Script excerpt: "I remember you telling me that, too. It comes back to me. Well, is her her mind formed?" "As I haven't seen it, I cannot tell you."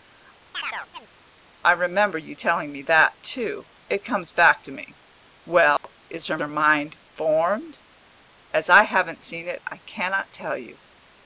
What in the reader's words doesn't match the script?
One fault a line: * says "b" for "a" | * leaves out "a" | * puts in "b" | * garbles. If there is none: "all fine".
all fine